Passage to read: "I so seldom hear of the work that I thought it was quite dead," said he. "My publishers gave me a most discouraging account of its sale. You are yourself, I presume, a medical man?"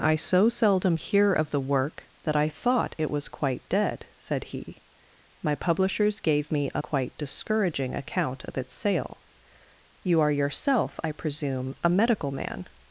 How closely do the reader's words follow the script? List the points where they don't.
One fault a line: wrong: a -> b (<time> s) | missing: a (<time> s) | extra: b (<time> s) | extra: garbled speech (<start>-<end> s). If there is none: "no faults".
wrong: most -> quite (6.8 s)